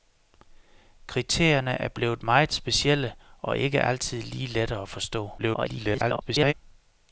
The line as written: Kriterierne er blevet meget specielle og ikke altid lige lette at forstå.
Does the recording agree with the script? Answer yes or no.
no